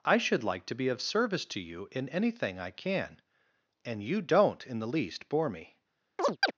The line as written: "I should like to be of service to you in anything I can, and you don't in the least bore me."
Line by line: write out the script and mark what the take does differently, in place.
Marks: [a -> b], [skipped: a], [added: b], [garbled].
"I should like to be of service to you in anything I can, and you don't in the least bore me."